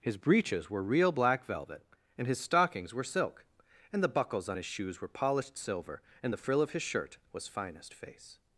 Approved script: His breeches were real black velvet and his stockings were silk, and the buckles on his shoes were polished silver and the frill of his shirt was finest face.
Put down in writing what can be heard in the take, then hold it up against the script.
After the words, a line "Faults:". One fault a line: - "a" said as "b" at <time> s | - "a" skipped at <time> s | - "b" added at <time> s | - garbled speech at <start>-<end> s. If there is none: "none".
His breeches were real black velvet and his stockings were silk, and the buckles on his shoes were polished silver and the frill of his shirt was finest face.
Faults:
none